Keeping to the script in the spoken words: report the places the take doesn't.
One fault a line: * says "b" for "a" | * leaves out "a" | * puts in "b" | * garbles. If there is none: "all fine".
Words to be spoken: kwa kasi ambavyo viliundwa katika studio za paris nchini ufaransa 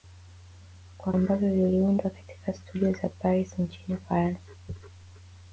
* leaves out "kasi"